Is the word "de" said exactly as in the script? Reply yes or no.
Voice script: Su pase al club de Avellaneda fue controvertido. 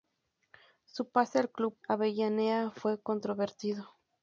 no